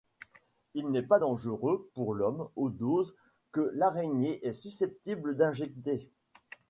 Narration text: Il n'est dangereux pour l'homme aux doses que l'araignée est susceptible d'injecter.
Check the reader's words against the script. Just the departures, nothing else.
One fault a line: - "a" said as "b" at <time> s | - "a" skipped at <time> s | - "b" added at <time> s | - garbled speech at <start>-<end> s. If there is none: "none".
- "pas" added at 1.0 s